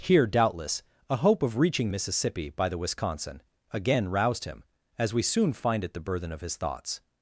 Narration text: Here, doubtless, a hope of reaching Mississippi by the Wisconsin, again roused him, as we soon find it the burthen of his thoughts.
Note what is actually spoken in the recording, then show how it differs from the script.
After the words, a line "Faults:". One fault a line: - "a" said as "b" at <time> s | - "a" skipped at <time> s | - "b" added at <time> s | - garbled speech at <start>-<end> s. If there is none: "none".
Here, doubtless, a hope of reaching Mississippi by the Wisconsin, again roused him, as we soon find it the burthen of his thoughts.
Faults:
none